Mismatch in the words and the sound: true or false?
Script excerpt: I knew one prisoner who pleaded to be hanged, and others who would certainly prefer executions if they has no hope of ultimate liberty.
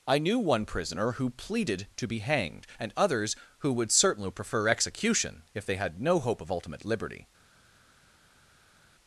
true